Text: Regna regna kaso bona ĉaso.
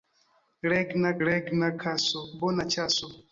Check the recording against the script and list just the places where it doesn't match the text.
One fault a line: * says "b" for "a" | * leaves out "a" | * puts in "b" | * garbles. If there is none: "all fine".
all fine